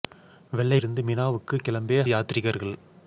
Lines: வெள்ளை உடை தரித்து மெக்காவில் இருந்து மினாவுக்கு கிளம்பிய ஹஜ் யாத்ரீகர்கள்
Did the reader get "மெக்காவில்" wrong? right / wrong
wrong